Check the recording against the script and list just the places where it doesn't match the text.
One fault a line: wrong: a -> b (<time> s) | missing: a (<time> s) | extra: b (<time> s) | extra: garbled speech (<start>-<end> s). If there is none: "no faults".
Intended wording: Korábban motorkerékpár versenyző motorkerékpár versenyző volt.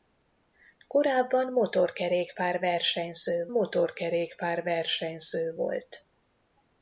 no faults